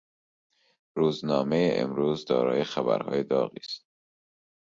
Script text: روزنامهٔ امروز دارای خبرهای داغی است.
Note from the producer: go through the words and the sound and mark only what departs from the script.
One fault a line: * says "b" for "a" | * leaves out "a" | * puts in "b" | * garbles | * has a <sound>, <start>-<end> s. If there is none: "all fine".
all fine